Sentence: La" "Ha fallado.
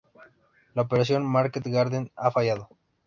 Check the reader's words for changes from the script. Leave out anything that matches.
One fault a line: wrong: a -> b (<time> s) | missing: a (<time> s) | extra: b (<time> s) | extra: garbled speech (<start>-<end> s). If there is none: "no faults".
extra: Operación Market Garden (0.8 s)